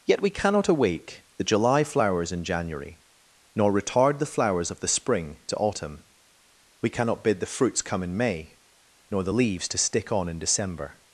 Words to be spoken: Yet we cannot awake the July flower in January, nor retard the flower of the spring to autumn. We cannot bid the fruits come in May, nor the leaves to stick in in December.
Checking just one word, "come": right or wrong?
right